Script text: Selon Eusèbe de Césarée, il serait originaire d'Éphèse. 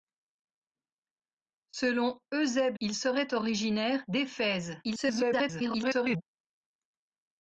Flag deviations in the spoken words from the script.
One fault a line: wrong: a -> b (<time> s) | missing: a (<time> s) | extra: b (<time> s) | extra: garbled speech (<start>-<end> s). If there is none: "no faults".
missing: de Césarée (2.8 s)
extra: garbled speech (4.8-6.2 s)